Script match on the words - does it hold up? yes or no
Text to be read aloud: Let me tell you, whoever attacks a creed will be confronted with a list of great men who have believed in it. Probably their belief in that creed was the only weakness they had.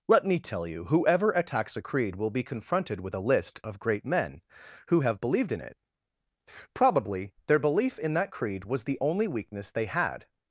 yes